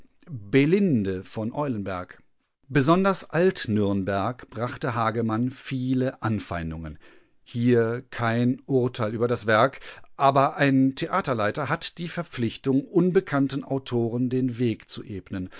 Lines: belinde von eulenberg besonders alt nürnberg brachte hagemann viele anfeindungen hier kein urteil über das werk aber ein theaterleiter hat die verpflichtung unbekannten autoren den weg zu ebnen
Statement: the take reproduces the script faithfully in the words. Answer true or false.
true